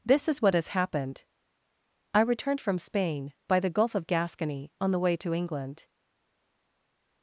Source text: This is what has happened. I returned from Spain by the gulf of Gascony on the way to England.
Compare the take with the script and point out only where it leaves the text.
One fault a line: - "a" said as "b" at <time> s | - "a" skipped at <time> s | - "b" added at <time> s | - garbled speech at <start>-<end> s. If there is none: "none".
none